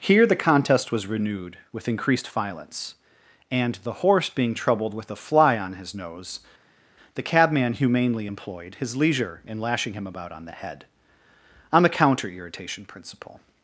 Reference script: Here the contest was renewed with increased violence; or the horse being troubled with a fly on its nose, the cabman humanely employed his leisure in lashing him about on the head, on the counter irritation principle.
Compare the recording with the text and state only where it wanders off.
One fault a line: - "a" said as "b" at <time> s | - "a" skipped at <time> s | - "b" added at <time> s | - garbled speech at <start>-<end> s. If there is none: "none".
- "or" said as "and" at 3.5 s
- "its" said as "his" at 5.7 s